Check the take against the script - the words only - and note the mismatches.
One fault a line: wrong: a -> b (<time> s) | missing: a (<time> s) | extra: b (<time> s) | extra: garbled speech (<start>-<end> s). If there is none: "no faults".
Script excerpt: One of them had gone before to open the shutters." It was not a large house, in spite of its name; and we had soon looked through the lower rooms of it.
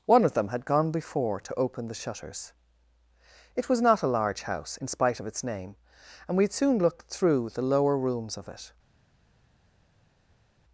no faults